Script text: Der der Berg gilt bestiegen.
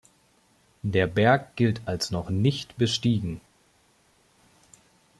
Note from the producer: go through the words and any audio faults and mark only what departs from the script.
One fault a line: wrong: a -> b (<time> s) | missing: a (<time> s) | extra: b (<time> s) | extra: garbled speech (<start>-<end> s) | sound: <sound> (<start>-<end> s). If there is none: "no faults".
missing: der (1.1 s)
extra: als noch nicht (1.8 s)